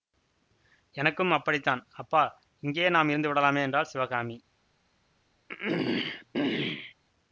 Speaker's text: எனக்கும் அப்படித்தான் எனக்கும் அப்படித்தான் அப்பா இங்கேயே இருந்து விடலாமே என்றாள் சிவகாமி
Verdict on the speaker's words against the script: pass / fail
fail